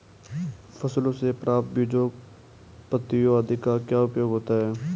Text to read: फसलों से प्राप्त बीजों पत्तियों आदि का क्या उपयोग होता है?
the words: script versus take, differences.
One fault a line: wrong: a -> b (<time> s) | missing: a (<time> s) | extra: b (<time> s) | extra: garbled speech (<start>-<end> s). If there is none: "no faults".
no faults